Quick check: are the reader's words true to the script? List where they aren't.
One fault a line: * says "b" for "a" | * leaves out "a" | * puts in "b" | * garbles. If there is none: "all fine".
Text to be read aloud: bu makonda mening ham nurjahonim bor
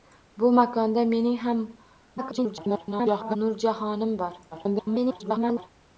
* garbles
* garbles